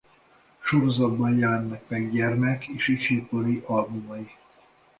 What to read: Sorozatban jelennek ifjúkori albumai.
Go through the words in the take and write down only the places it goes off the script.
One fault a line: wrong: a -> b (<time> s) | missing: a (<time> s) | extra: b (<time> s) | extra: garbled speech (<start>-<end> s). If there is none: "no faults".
extra: meg gyermek és (1.9 s)